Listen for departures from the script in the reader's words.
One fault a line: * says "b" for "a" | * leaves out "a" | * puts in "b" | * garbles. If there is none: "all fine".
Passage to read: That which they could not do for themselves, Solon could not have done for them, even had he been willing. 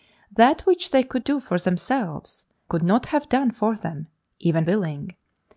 * leaves out "not"
* leaves out "Solon"
* leaves out "had he been"